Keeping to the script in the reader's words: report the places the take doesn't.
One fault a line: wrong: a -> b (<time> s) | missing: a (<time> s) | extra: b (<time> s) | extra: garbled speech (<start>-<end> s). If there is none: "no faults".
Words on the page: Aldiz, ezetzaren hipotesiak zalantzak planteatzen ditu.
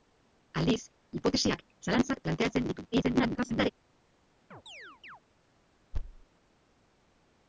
missing: ezetzaren (0.8 s)
extra: garbled speech (2.9-3.7 s)